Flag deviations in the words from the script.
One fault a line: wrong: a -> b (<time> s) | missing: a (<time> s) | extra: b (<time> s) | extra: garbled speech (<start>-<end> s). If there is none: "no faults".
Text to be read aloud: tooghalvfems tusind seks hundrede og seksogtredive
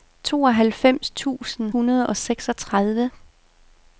missing: seks (1.7 s)